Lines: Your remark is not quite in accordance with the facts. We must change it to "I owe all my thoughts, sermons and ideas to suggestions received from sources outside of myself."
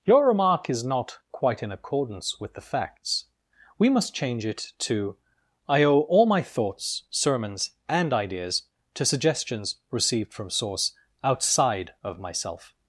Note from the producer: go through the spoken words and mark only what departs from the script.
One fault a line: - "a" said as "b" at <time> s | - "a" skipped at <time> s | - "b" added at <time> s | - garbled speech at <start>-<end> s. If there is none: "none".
- "sources" said as "source" at 10.5 s